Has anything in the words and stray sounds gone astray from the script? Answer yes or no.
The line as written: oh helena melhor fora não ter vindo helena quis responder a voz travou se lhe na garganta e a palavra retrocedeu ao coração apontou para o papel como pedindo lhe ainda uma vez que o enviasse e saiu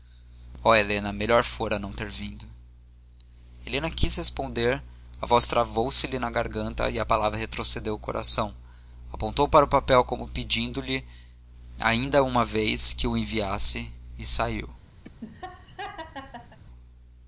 yes